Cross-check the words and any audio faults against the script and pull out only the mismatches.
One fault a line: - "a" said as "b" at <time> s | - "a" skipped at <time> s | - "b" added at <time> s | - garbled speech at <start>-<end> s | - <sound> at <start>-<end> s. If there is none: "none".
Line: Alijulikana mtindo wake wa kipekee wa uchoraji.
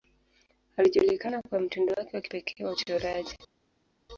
- "kwa" added at 1.4 s